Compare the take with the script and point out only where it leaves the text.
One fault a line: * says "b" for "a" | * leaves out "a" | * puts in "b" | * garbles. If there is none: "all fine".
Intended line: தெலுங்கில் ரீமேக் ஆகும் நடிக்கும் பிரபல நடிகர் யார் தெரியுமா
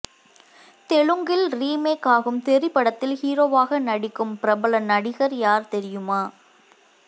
* puts in "தெறி படத்தில் ஹீரோவாக"